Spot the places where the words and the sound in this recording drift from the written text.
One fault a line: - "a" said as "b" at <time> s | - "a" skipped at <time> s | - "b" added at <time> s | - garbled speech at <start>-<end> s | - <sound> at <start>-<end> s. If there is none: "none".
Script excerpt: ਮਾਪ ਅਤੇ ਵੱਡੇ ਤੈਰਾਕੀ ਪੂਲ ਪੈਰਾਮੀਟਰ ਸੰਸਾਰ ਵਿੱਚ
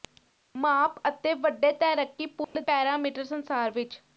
- dropout at 2.4-2.6 s